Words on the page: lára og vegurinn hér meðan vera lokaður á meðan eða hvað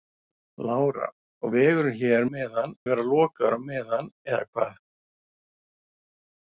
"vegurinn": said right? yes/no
yes